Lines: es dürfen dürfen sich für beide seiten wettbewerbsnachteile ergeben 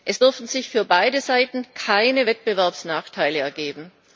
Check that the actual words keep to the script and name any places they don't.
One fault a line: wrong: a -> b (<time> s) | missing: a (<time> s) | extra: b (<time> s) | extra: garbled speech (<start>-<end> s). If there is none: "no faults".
missing: dürfen (0.5 s)
extra: keine (1.7 s)